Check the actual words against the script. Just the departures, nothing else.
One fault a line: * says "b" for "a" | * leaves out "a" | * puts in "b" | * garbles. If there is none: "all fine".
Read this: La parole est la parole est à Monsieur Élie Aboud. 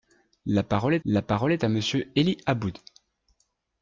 all fine